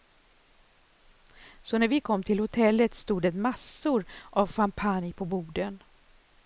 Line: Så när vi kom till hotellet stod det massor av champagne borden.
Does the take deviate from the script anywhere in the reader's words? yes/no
yes